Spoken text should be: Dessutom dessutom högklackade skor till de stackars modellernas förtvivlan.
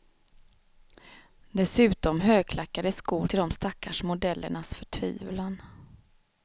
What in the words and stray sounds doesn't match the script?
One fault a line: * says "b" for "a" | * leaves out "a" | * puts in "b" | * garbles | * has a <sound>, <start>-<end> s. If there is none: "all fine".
* leaves out "dessutom"